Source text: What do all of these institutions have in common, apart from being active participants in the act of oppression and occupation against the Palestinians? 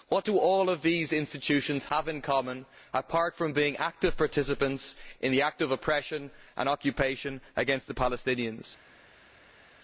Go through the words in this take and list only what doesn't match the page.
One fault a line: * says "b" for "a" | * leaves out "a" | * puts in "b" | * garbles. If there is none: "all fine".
all fine